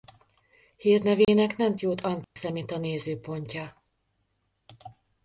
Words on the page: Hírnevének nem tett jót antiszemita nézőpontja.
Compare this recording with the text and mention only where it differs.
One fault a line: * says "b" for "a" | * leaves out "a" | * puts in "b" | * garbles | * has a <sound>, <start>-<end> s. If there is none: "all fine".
* has a dropout, 1.2-1.3 s
* leaves out "tett"
* has a dropout, 2.2-2.4 s